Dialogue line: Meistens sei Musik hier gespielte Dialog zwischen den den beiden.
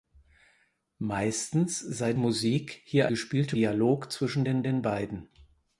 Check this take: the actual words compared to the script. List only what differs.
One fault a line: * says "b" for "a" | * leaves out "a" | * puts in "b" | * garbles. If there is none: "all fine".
all fine